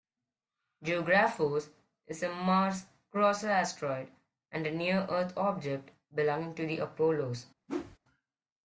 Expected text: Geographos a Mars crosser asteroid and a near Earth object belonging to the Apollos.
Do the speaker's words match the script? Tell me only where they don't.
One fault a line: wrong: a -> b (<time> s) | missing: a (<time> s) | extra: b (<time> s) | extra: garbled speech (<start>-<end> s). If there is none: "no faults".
extra: is (2.0 s)